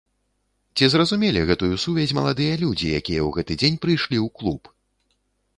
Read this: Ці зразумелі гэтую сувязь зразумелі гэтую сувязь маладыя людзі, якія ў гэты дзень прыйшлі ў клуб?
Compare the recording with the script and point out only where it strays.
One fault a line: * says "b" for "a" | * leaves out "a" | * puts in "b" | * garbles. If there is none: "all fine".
* leaves out "зразумелі гэтую сувязь"